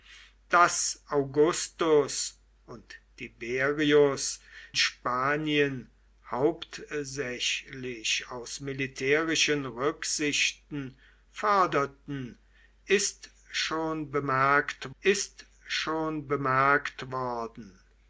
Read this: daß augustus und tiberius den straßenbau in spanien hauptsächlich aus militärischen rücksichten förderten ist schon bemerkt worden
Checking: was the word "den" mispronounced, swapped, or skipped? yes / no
yes